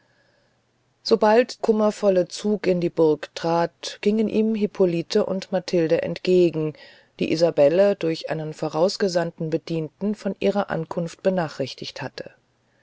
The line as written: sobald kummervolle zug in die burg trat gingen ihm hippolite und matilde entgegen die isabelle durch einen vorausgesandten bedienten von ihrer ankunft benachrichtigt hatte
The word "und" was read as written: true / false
true